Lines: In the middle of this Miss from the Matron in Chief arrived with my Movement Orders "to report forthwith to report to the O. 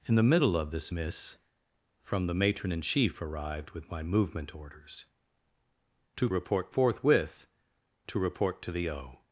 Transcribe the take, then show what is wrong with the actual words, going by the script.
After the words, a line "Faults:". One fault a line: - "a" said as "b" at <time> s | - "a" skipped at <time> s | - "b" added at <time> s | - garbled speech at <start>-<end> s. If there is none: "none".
In the middle of this Miss from the Matron in Chief arrived with my Movement Orders "to report forthwith to report to the O.
Faults:
none